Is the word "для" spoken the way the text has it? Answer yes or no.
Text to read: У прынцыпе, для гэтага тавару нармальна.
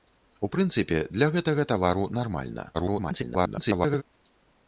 yes